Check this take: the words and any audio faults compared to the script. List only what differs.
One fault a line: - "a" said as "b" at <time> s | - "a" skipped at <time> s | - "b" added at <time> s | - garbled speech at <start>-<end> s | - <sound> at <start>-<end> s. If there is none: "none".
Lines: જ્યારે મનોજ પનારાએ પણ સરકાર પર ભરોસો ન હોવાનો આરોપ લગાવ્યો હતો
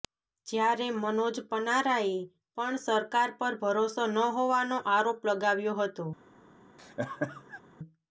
- laugh at 6.8-7.6 s